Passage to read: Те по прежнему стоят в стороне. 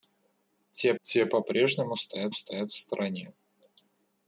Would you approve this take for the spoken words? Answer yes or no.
no